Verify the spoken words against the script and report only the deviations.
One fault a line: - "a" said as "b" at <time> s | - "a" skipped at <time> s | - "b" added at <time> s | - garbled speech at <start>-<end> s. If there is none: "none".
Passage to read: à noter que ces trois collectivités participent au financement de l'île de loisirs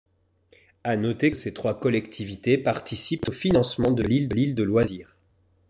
- "l'île" added at 4.3 s